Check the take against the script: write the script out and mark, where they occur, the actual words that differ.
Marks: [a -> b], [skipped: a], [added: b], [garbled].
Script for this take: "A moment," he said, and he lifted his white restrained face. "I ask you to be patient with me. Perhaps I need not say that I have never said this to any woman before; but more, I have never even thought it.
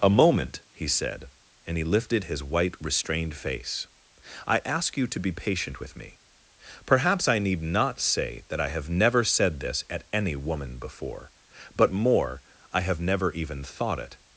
"A moment," he said, and he lifted his white restrained face. "I ask you to be patient with me. Perhaps I need not say that I have never said this [to -> at] any woman before; but more, I have never even thought it.